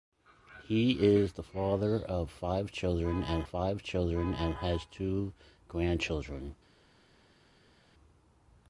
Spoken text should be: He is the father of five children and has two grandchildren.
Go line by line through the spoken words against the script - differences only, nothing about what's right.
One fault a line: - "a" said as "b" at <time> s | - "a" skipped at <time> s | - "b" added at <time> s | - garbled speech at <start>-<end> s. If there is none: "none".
- "five children and" added at 3.4 s